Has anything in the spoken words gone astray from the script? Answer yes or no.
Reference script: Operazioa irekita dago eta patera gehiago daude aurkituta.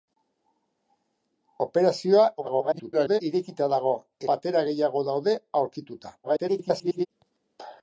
yes